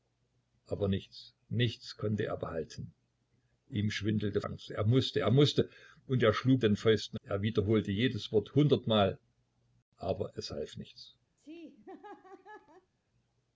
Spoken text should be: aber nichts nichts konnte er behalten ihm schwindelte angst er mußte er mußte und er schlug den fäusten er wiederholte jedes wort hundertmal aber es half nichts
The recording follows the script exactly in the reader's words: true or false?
true